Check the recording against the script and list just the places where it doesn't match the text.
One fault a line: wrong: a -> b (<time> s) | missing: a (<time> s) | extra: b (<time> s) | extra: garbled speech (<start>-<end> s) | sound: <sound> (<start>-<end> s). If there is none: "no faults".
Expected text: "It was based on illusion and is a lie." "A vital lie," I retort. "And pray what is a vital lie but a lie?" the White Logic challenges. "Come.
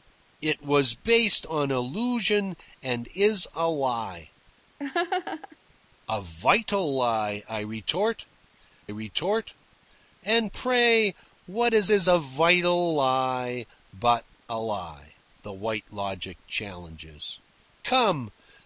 sound: laugh (4.8-5.6 s)
extra: retort (8.9 s)
extra: is (11.9 s)